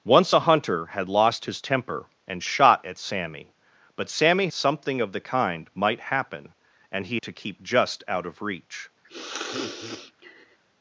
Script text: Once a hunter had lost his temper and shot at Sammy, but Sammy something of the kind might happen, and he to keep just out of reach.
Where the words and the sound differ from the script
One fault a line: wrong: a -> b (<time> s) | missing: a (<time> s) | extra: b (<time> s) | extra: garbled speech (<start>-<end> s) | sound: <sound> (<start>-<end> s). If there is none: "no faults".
sound: sniff (9.0-10.6 s)